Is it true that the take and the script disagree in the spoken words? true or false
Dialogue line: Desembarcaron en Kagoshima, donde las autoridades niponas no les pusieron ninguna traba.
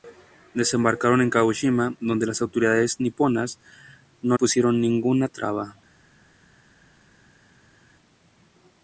true